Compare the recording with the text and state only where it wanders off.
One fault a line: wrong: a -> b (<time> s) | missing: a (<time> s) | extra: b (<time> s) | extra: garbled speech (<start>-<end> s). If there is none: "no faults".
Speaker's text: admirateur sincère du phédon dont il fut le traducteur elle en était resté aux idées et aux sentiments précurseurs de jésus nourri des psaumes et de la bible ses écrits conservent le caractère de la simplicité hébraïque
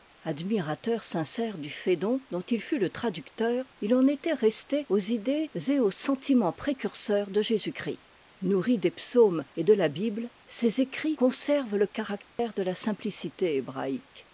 wrong: elle -> il (3.8 s)
extra: christ (7.7 s)